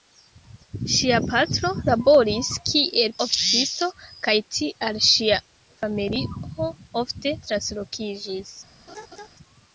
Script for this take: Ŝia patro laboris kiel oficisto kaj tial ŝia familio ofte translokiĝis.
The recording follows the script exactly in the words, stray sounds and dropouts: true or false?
false